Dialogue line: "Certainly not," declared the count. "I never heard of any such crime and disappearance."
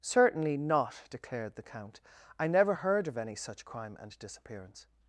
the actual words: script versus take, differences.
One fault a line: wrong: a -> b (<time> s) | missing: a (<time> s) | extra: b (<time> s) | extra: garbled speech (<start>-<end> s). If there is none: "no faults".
no faults